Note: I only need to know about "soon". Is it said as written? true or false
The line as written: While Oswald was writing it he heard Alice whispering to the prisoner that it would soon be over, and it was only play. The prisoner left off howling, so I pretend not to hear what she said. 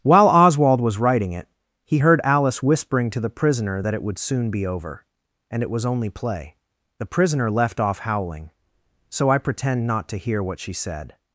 true